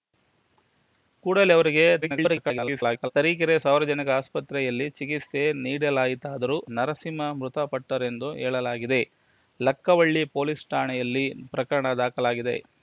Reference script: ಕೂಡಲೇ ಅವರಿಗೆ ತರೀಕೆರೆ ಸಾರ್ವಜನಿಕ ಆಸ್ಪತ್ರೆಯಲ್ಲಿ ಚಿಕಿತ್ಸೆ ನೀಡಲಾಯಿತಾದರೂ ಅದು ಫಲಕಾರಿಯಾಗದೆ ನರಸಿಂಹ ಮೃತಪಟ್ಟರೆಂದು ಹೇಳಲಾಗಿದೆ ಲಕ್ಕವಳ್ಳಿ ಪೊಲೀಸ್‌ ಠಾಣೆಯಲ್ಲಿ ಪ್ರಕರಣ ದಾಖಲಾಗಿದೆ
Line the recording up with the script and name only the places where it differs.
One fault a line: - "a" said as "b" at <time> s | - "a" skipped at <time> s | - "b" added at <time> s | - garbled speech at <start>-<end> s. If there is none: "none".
- garbled speech at 2.0-3.1 s
- "ಅದು ಫಲಕಾರಿಯಾಗದೆ" skipped at 6.6 s